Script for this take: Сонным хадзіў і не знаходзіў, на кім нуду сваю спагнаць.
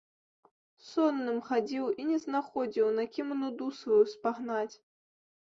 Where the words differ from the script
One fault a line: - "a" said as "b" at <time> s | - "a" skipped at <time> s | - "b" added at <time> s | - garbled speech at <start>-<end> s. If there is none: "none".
none